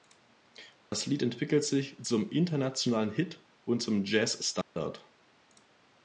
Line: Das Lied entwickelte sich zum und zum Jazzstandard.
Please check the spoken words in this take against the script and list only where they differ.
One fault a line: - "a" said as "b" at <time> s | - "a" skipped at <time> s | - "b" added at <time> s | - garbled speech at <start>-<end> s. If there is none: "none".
- "internationalen Hit" added at 2.3 s